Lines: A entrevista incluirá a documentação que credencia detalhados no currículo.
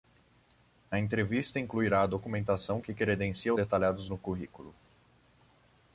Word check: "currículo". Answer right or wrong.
right